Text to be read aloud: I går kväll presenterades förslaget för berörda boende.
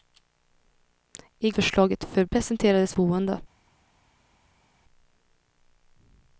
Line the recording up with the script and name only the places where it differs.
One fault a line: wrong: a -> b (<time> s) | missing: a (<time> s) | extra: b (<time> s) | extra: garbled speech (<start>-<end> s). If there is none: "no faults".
missing: går kväll presenterades (1.5 s)
wrong: berörda -> presenterades (2.2 s)